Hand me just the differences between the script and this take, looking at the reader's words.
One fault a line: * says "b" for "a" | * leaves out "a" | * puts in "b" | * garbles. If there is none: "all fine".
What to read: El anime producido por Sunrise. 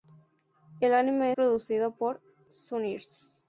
all fine